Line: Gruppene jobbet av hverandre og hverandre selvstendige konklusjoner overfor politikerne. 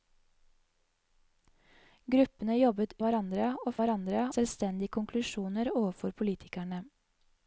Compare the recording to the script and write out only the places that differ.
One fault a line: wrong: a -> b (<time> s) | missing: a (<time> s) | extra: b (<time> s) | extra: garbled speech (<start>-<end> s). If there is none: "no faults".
no faults